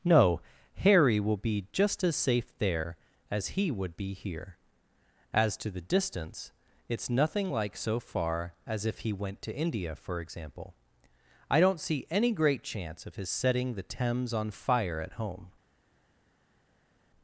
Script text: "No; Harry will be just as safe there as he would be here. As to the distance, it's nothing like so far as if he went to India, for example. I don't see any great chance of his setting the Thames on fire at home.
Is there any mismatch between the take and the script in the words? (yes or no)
no